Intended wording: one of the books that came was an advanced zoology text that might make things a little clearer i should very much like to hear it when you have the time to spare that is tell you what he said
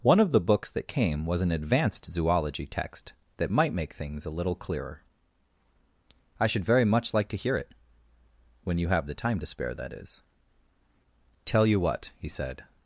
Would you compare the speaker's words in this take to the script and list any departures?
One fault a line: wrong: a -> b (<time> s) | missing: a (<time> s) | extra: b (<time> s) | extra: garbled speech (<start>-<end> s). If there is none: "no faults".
no faults